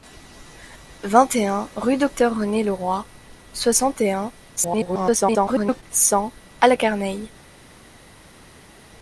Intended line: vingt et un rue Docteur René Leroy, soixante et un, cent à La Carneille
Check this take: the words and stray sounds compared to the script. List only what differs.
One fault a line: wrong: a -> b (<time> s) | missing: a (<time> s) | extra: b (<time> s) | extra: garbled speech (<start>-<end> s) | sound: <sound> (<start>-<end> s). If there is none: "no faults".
extra: garbled speech (4.6-5.8 s)